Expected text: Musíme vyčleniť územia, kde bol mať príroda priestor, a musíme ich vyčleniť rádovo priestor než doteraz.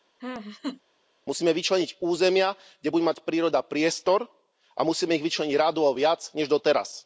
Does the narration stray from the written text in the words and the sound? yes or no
yes